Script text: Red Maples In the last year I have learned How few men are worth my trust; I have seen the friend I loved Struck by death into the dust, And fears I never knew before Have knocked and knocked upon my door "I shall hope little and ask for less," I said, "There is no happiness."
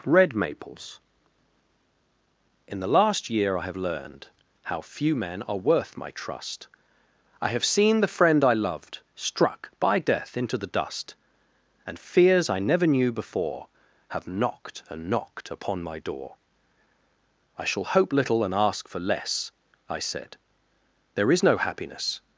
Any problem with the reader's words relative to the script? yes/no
no